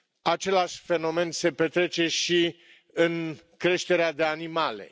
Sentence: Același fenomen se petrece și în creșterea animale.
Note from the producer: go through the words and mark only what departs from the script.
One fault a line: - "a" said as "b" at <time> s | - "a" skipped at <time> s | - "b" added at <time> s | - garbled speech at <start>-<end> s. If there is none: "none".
- "de" added at 4.1 s